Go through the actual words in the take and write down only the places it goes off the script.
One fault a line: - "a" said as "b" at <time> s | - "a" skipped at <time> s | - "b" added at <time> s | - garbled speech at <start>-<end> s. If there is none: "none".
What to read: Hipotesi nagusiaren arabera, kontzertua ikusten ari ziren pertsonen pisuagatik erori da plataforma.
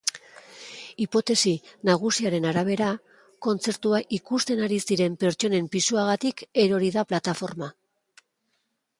none